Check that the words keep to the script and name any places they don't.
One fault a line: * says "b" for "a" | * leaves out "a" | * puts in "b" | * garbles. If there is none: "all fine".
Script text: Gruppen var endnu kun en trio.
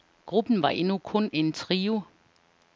all fine